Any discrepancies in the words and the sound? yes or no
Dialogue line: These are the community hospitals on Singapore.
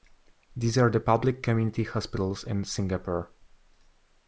yes